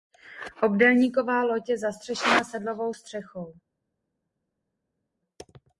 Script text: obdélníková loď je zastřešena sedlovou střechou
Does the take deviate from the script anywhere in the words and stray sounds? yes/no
no